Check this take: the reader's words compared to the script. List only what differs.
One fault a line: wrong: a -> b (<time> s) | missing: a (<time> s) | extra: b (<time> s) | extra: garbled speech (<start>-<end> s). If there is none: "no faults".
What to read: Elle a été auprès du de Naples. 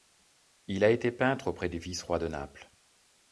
wrong: Elle -> Il (0.7 s)
extra: peintre (1.1 s)
extra: vice roi (1.8 s)